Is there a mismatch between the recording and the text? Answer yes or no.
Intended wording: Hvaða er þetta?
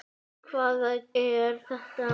no